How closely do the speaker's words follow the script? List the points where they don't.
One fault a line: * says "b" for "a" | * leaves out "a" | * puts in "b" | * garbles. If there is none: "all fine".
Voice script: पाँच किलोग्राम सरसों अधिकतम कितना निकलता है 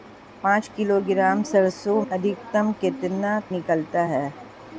all fine